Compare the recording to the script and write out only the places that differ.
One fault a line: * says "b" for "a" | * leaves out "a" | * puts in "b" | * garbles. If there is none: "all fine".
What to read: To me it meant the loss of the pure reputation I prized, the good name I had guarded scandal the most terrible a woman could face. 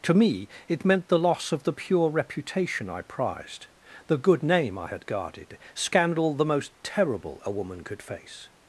all fine